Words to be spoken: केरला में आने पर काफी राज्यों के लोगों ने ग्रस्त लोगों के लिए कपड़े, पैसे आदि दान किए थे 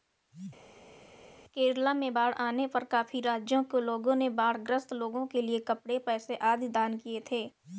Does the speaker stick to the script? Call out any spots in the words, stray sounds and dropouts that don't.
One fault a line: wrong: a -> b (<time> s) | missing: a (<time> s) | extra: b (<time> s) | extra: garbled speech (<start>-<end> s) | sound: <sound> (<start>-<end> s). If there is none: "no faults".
extra: बाढ़ (2.1 s)
extra: बाढ़ (4.3 s)